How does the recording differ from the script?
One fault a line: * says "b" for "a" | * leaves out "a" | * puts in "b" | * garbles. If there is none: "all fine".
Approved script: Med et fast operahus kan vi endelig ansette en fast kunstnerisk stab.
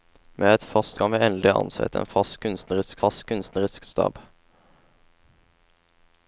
* leaves out "operahus"
* puts in "fast kunstnerisk"